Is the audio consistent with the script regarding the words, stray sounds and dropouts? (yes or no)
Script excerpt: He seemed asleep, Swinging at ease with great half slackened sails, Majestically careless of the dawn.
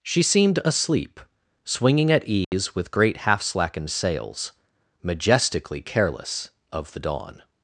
no